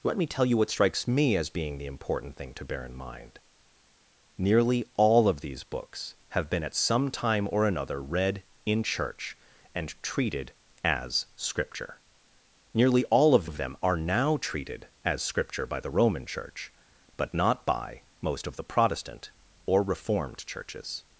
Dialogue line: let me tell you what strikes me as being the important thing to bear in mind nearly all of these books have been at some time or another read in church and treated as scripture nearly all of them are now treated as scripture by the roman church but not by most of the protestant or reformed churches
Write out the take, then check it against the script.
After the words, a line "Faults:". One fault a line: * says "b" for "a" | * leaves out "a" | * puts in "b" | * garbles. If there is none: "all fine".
let me tell you what strikes me as being the important thing to bear in mind nearly all of these books have been at some time or another read in church and treated as scripture nearly all of of them are now treated as scripture by the roman church but not by most of the protestant or reformed churches
Faults:
* puts in "of"